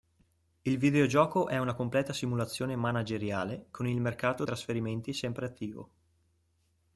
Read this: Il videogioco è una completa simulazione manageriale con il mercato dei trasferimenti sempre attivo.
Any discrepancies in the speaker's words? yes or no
yes